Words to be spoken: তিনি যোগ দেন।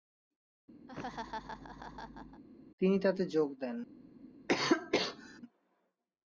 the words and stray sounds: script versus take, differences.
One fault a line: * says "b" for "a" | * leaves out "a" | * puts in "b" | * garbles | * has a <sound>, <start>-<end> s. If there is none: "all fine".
* has a laugh, 0.9-2.4 s
* puts in "তাতে"
* has a cough, 4.5-5.4 s